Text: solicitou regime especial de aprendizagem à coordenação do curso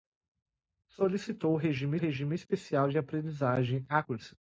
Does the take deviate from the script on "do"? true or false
true